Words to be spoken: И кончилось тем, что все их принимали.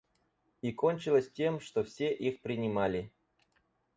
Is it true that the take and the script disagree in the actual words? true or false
false